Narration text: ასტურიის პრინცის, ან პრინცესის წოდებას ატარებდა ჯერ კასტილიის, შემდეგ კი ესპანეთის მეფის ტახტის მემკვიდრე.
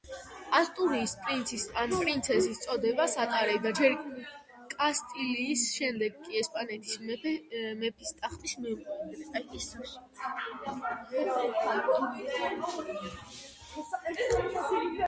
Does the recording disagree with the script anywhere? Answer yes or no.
no